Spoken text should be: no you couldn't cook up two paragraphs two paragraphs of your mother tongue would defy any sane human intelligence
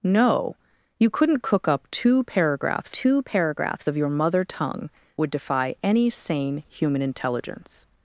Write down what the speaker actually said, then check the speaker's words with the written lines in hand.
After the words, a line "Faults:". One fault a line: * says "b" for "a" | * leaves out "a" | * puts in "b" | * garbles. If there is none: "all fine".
no you couldn't cook up two paragraphs two paragraphs of your mother tongue would defy any sane human intelligence
Faults:
all fine